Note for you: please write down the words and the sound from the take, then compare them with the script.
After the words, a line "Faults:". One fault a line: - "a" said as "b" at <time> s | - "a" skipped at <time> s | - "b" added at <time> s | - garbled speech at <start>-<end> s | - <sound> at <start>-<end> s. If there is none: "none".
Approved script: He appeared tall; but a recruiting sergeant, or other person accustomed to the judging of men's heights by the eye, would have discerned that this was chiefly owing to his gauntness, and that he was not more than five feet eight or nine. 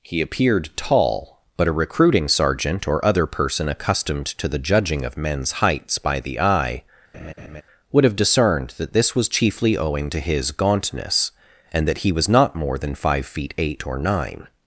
He appeared tall; but a recruiting sergeant, or other person accustomed to the judging of men's heights by the eye, would have discerned that this was chiefly owing to his gauntness, and that he was not more than five feet eight or nine.
Faults:
- laugh at 7.1-7.6 s